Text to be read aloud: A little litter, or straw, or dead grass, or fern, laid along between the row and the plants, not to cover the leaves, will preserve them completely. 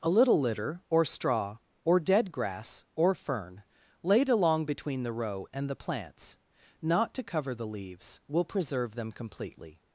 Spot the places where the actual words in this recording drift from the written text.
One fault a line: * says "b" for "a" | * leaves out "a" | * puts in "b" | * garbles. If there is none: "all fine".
all fine